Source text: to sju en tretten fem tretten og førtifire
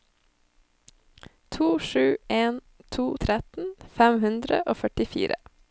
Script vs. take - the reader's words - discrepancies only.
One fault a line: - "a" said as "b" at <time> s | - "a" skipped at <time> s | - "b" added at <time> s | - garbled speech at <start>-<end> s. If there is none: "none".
- "to" added at 2.9 s
- "tretten" said as "hundre" at 4.3 s